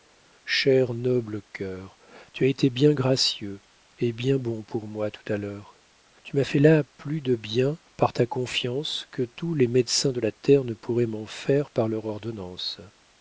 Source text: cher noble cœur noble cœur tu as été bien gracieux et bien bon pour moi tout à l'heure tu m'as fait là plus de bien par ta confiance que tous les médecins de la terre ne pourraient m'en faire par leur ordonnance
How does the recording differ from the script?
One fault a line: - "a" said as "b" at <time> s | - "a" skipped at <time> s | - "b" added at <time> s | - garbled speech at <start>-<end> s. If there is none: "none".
- "noble cœur" skipped at 1.9 s